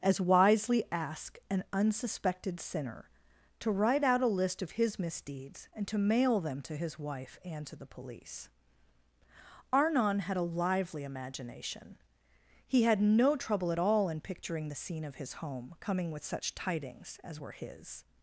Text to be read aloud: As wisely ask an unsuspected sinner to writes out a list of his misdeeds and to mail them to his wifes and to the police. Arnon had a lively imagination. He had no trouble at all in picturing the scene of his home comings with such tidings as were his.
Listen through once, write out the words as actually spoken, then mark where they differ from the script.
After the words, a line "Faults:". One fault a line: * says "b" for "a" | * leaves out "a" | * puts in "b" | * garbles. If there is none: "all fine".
As wisely ask an unsuspected sinner to write out a list of his misdeeds and to mail them to his wife and to the police. Arnon had a lively imagination. He had no trouble at all in picturing the scene of his home coming with such tidings as were his.
Faults:
* says "write" for "writes"
* says "wife" for "wifes"
* says "coming" for "comings"